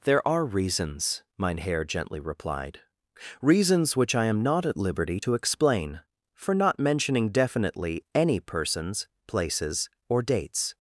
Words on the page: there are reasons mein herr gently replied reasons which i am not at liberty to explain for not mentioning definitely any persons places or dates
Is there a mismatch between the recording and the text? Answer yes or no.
no